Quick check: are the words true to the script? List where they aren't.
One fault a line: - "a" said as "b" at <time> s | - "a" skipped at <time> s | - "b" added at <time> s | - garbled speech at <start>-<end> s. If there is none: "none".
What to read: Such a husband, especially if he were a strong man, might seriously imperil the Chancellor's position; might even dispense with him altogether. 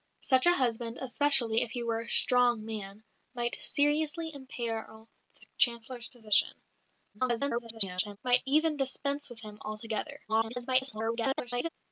- garbled speech at 7.1-8.2 s
- garbled speech at 10.3-11.7 s